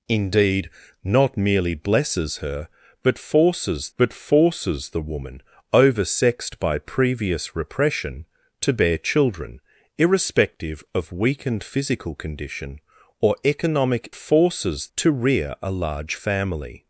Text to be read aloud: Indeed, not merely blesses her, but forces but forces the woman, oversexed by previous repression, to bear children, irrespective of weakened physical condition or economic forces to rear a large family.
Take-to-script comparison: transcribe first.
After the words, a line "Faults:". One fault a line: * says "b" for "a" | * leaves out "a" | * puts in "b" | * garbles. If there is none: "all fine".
Indeed, not merely blesses her, but forces but forces the woman, oversexed by previous repression, to bear children, irrespective of weakened physical condition or economic forces to rear a large family.
Faults:
all fine